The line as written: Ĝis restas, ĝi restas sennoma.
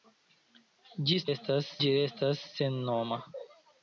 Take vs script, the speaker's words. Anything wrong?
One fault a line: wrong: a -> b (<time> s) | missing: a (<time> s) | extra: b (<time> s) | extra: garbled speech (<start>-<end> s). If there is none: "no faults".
no faults